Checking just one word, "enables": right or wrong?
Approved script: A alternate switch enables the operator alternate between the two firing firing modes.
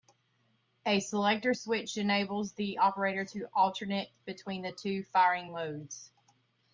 right